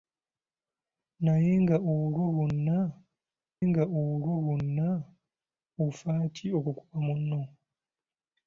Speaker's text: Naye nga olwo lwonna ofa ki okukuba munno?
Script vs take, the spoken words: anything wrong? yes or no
yes